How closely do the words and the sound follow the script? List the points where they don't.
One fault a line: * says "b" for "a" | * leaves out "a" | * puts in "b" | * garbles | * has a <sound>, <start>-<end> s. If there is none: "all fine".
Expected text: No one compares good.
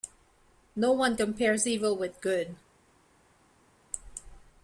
* puts in "evil with"